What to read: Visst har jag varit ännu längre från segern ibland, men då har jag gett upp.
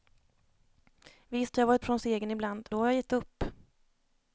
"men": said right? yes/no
no